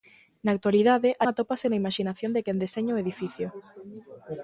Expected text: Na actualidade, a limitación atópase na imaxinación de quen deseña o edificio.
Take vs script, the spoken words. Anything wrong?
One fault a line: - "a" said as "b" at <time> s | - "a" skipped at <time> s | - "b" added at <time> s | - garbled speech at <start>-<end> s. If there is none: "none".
- "limitación" skipped at 1.2 s